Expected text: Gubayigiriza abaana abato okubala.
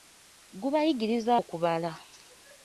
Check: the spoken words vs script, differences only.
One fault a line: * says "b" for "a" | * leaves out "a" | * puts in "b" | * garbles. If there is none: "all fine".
* leaves out "abaana abato"